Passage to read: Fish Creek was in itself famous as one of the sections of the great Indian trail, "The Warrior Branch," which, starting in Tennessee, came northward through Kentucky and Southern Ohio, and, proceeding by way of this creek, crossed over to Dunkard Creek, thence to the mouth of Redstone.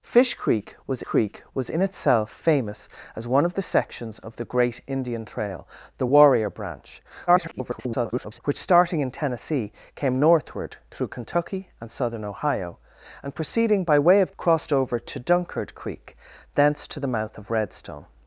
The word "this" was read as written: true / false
false